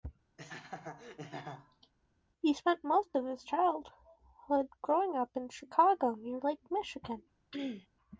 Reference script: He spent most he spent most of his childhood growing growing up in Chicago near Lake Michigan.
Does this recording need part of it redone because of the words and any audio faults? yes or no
yes